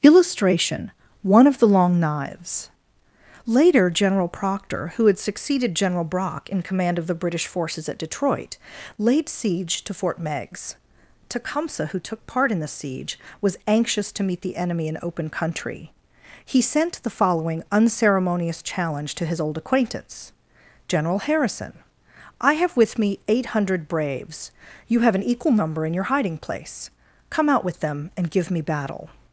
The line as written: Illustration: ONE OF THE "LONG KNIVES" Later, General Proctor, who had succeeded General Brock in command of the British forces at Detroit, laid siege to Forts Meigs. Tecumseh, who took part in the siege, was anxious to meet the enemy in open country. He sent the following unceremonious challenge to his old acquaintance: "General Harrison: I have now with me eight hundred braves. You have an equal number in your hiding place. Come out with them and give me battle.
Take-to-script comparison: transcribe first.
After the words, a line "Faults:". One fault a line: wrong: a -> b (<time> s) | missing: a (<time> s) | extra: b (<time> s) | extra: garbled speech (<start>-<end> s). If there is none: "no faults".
Illustration: ONE OF THE "LONG KNIVES" Later, General Proctor, who had succeeded General Brock in command of the British forces at Detroit, laid siege to Fort Meigs. Tecumseh, who took part in the siege, was anxious to meet the enemy in open country. He sent the following unceremonious challenge to his old acquaintance: "General Harrison: I have with me eight hundred braves. You have an equal number in your hiding place. Come out with them and give me battle.
Faults:
wrong: Forts -> Fort (9.9 s)
missing: now (22.8 s)